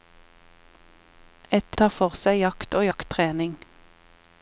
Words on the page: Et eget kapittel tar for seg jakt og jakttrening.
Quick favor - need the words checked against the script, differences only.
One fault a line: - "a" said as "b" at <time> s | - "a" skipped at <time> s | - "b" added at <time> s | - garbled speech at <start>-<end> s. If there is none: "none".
- "eget kapittel" skipped at 1.8 s